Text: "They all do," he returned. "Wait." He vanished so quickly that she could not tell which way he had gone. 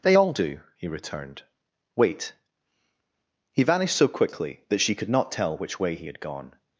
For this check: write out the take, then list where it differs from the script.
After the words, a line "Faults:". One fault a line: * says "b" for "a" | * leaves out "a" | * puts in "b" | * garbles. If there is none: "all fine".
"They all do," he returned. "Wait." He vanished so quickly that she could not tell which way he had gone.
Faults:
all fine